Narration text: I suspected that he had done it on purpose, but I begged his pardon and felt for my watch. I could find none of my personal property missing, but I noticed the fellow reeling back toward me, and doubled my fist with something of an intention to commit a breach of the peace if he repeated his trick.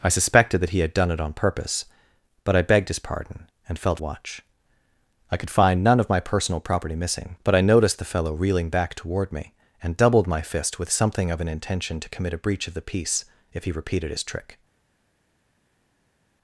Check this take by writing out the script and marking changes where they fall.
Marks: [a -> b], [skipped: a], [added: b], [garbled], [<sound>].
I suspected that he had done it on purpose, but I begged his pardon and felt [skipped: for my] watch. I could find none of my personal property missing, but I noticed the fellow reeling back toward me, and doubled my fist with something of an intention to commit a breach of the peace if he repeated his trick.